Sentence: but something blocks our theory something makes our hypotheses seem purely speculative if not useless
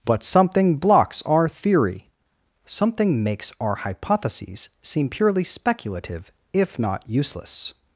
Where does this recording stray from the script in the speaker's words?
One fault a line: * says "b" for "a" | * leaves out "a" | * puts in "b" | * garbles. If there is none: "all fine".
all fine